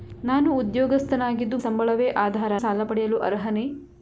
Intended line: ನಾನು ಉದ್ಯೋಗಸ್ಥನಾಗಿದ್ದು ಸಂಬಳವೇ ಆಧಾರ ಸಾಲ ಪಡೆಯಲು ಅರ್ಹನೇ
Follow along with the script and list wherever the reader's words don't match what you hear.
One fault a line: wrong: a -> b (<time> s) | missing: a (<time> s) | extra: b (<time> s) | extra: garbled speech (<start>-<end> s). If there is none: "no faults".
no faults